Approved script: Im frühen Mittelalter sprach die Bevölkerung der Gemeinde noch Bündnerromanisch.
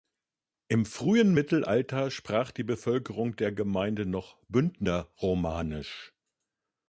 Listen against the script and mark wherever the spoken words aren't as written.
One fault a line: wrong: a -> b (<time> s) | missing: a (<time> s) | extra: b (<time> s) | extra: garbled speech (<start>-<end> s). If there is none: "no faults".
no faults